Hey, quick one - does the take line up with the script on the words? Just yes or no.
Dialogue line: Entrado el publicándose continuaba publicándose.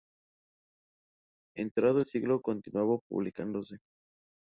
no